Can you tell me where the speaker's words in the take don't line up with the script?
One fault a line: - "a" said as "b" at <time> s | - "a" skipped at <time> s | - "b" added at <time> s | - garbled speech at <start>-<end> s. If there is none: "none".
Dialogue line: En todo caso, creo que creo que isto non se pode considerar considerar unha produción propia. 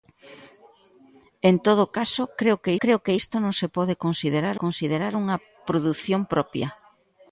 none